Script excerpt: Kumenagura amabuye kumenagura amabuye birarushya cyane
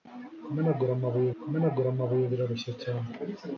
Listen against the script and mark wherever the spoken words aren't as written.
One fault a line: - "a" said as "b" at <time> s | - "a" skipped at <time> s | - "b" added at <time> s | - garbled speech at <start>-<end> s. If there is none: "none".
none